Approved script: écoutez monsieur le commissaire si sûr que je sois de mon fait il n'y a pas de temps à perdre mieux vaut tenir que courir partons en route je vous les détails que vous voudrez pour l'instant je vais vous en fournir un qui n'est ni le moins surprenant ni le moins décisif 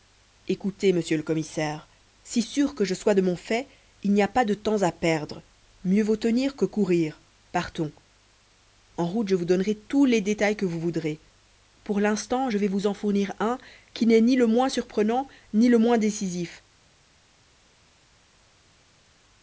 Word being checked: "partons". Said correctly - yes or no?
yes